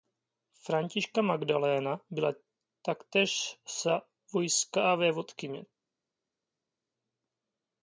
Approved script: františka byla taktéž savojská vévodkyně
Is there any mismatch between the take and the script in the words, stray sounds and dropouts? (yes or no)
yes